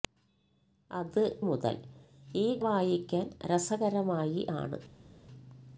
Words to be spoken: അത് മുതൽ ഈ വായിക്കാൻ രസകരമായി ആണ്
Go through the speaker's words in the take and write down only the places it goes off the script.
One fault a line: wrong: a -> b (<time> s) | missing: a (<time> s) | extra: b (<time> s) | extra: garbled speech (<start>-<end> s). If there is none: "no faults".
no faults